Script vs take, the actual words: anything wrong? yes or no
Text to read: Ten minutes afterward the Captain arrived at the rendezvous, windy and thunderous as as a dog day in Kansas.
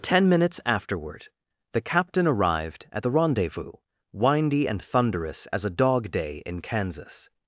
yes